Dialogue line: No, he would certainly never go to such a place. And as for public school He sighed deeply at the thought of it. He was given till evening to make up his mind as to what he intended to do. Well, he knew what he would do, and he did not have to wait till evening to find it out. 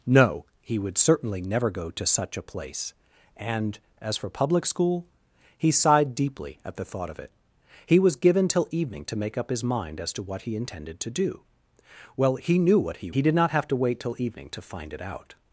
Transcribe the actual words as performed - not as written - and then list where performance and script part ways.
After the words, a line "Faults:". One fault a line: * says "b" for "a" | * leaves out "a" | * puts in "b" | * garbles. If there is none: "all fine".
No, he would certainly never go to such a place. And as for public school He sighed deeply at the thought of it. He was given till evening to make up his mind as to what he intended to do. Well, he knew what he he did not have to wait till evening to find it out.
Faults:
* leaves out "would do and"